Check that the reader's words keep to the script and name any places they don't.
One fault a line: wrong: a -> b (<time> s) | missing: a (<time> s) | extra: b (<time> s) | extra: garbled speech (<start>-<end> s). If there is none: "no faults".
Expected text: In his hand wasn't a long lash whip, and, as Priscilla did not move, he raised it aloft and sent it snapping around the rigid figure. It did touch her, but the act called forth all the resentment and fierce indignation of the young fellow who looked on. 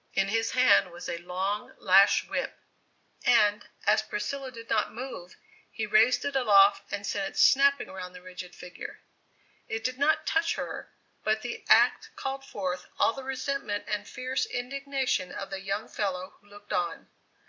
wrong: wasn't -> was (0.9 s)
extra: not (10.0 s)